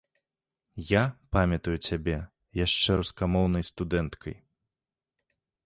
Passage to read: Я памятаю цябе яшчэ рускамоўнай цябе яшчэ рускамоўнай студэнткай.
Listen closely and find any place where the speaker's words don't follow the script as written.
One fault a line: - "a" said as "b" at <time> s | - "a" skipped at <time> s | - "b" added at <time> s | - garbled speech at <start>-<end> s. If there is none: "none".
- "цябе яшчэ рускамоўнай" skipped at 3.6 s